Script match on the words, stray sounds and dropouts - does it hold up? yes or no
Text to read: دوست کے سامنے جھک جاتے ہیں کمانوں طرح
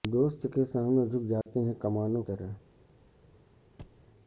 no